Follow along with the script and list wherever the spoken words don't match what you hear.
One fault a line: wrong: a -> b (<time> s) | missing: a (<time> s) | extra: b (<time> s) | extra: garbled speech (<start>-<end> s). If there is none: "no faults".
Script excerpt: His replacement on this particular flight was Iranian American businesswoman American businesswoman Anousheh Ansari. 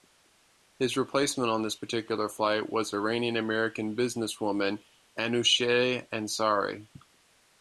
missing: American businesswoman (4.8 s)